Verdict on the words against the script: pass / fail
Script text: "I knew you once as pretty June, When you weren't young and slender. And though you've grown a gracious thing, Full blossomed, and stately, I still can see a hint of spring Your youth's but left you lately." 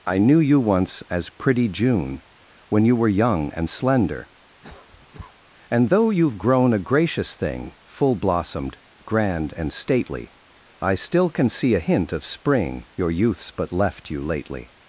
fail